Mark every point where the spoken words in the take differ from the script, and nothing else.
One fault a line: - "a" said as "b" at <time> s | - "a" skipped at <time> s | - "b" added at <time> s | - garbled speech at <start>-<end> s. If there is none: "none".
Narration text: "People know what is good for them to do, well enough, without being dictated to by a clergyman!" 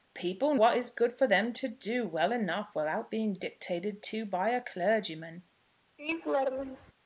- "know" skipped at 0.6 s